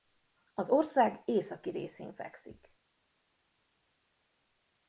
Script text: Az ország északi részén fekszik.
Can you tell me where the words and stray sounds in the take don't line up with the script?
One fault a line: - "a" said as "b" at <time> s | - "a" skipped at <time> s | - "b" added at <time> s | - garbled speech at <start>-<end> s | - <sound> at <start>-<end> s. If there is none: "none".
none